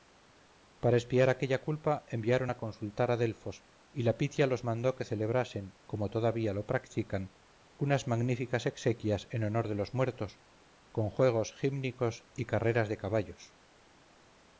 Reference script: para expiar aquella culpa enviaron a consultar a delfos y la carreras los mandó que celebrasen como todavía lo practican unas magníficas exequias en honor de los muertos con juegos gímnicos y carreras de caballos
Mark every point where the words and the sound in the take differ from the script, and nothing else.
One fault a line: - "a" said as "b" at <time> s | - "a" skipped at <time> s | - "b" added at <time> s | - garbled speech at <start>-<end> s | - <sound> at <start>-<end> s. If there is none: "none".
- "carreras" said as "pitia" at 4.2 s